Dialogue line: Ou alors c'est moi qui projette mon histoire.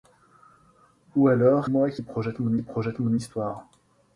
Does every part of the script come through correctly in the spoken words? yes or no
no